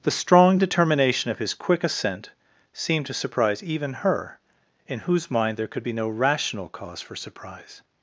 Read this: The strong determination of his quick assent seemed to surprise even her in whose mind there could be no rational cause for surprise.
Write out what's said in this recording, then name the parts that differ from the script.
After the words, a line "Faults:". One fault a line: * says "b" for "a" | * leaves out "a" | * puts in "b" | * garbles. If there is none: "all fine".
The strong determination of his quick assent seemed to surprise even her in whose mind there could be no rational cause for surprise.
Faults:
all fine